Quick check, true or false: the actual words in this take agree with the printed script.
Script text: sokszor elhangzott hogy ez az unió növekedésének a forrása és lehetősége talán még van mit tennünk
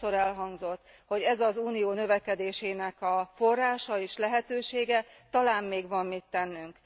true